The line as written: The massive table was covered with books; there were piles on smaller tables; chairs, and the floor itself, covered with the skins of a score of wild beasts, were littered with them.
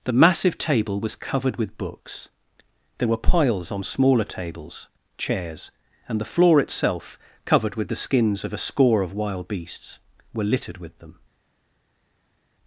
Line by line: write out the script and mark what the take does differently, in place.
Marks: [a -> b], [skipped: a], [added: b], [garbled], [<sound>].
The massive table was covered with books; there were piles on smaller tables; chairs, and the floor itself, covered with the skins of a score of wild beasts, were littered with them.